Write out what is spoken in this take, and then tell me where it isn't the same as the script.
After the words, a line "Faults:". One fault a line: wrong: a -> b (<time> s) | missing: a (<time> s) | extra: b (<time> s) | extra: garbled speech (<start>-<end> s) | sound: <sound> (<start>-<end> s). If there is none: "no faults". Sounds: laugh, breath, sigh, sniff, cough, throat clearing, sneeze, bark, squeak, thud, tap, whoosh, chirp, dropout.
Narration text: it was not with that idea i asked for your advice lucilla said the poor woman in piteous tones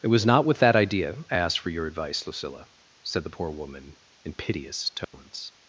it was not with that idea i asked for your advice lucilla said the poor woman in piteous tones
Faults:
sound: dropout (5.0-5.1 s)